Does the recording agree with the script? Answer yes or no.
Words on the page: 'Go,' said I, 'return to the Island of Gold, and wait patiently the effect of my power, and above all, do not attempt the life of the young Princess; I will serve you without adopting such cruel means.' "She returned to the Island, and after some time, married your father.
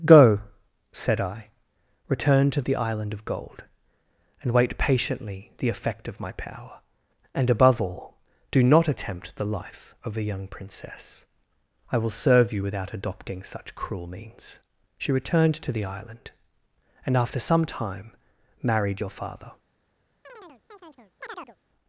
no